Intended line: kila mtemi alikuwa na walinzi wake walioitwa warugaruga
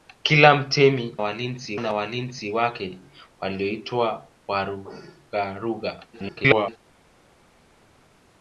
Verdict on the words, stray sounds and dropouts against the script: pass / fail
fail